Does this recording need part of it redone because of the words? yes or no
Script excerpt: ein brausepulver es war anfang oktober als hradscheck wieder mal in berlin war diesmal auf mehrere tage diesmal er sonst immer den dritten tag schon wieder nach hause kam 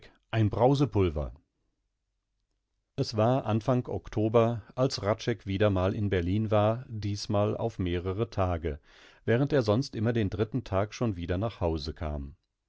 yes